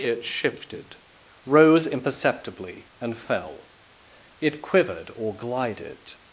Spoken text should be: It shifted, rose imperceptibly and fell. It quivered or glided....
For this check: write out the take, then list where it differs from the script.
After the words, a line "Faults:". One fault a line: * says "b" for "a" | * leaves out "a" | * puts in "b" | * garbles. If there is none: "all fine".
It shifted, rose imperceptibly and fell. It quivered or glided....
Faults:
all fine